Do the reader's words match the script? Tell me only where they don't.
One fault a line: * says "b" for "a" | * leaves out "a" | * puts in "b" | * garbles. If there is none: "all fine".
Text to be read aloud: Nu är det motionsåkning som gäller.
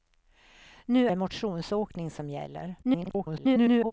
* leaves out "är"
* garbles